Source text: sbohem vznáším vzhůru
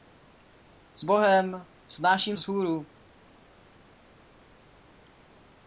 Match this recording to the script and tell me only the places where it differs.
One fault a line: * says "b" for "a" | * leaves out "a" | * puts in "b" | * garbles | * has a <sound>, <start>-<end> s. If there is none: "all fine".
all fine